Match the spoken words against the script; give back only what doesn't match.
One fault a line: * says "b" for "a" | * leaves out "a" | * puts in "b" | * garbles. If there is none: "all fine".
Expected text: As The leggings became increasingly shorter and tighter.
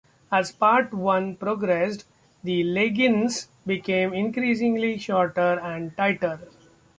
* puts in "Part One progressed"